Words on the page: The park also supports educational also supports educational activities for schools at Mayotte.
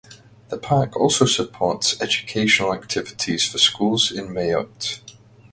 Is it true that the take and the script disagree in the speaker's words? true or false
true